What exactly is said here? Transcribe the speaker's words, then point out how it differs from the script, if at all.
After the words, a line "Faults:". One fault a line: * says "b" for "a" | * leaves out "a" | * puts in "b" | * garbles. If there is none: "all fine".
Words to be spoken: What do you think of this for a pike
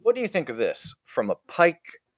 What do you think of this from a pike
Faults:
* says "from" for "for"